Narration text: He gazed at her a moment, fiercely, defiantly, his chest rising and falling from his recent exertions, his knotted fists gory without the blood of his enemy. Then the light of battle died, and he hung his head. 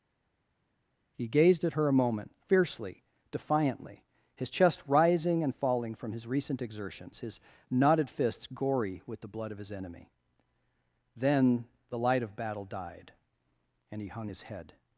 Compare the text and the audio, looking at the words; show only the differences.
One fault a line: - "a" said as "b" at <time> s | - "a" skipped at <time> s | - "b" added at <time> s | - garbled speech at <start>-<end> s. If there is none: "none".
- "without" said as "with" at 9.1 s